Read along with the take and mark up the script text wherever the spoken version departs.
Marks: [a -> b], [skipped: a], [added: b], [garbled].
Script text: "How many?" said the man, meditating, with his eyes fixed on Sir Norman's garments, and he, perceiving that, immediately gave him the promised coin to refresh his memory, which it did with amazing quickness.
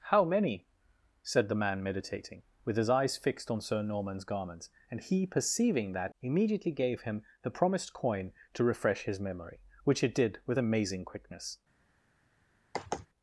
"How many?" said the man, meditating, with his eyes fixed on Sir Norman's garments, and he, perceiving that, immediately gave him the promised coin to refresh his memory, which it did with amazing quickness.